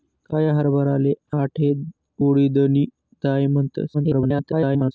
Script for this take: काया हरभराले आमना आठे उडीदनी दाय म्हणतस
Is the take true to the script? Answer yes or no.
no